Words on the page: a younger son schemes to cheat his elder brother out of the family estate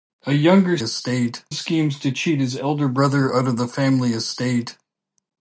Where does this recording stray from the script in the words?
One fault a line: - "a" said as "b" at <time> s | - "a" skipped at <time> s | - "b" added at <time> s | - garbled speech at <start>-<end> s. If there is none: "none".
- "son" said as "estate" at 0.8 s